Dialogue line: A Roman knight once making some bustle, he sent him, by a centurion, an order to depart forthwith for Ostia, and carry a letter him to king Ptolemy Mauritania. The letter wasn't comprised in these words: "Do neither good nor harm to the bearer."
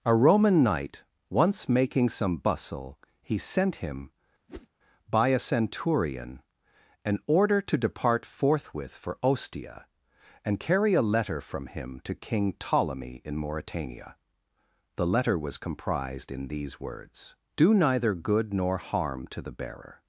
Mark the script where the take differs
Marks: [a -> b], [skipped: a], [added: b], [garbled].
A Roman knight once making some bustle, he sent him, by a centurion, an order to depart forthwith for Ostia, and carry a letter [added: from] him to king Ptolemy [added: in] Mauritania. The letter [wasn't -> was] comprised in these words: "Do neither good nor harm to the bearer."